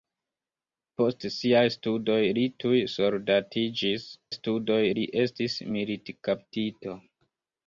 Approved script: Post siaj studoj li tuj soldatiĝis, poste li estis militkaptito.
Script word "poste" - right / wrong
wrong